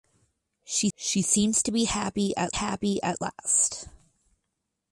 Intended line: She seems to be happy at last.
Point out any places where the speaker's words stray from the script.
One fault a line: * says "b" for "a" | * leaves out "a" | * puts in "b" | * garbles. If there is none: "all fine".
* puts in "she"
* puts in "happy at"